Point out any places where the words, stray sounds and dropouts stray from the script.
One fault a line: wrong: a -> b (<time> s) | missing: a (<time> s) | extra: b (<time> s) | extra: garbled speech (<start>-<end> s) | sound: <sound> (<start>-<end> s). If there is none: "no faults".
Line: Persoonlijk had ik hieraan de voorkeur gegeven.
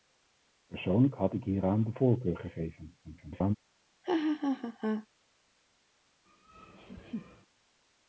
extra: garbled speech (3.0-3.6 s)
sound: laugh (4.0-5.1 s)
sound: laugh (6.3-7.5 s)